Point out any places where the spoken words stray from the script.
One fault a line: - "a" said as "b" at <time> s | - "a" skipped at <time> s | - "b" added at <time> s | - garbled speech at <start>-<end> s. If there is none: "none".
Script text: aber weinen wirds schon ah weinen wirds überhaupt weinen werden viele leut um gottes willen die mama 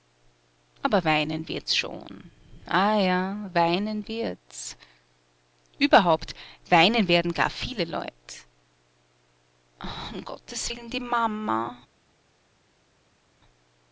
- "ja" added at 3.0 s
- "gar" added at 7.3 s